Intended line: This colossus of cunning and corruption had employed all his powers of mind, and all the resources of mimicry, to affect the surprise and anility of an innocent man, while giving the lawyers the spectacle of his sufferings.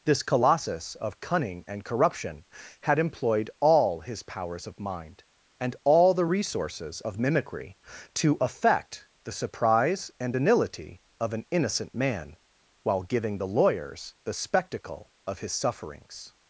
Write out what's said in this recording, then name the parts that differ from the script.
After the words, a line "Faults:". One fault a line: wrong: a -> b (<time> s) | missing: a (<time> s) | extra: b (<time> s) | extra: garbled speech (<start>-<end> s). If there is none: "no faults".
This colossus of cunning and corruption had employed all his powers of mind, and all the resources of mimicry, to affect the surprise and anility of an innocent man, while giving the lawyers the spectacle of his sufferings.
Faults:
no faults